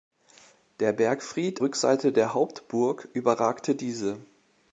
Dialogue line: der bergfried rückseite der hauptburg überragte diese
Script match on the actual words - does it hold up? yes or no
yes